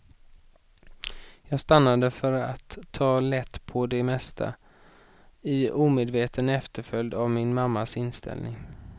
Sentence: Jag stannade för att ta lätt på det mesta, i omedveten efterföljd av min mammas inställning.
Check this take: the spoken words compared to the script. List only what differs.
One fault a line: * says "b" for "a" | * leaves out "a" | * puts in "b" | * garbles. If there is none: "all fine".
all fine